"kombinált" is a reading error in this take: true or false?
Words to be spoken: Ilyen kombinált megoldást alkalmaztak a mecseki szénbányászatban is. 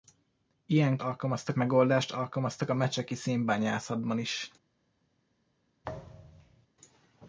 true